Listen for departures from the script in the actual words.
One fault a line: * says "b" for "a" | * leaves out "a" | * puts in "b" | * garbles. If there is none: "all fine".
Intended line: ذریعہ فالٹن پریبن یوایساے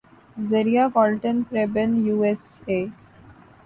all fine